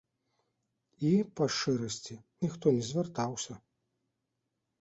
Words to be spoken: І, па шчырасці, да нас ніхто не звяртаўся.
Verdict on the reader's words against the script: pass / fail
fail